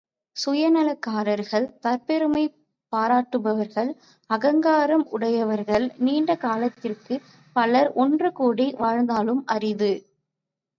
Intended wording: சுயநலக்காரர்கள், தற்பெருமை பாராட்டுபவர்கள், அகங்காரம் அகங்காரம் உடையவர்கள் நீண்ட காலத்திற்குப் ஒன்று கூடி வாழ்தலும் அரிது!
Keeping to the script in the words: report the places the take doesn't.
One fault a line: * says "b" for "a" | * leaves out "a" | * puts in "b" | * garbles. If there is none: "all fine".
* leaves out "அகங்காரம்"
* puts in "பலர்"